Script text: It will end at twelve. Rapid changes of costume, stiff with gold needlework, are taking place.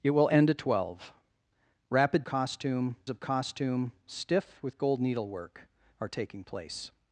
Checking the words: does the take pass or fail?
fail